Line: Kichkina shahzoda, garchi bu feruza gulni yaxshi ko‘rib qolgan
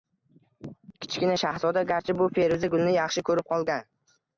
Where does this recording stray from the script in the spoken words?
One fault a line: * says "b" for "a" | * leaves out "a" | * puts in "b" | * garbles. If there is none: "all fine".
all fine